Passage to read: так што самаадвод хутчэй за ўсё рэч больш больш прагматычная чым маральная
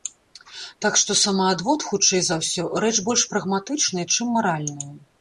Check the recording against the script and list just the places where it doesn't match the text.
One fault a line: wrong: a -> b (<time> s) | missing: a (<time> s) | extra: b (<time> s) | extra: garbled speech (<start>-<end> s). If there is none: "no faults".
missing: больш (3.3 s)